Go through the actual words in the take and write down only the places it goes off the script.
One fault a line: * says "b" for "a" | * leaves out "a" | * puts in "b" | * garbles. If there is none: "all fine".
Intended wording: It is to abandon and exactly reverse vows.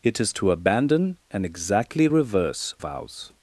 all fine